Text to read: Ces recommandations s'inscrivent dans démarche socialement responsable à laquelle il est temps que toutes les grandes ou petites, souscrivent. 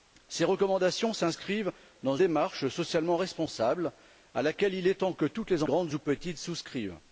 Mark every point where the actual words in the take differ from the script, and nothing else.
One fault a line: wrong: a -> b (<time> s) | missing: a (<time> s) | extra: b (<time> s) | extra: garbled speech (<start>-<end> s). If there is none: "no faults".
no faults